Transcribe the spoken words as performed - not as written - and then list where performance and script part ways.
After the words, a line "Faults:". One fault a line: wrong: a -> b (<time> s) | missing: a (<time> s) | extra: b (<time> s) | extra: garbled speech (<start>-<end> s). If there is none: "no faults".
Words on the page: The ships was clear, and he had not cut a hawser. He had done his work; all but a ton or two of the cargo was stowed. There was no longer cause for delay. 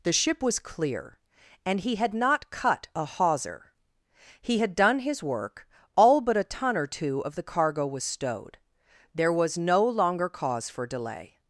The ship was clear, and he had not cut a hawser. He had done his work; all but a ton or two of the cargo was stowed. There was no longer cause for delay.
Faults:
wrong: ships -> ship (0.1 s)